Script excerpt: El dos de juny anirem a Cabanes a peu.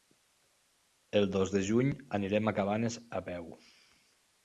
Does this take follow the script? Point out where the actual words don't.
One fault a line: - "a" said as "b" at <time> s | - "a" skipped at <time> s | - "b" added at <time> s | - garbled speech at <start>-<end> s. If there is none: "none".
none